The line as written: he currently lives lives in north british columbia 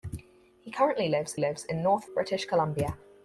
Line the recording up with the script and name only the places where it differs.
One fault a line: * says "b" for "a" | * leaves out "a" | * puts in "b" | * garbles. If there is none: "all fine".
all fine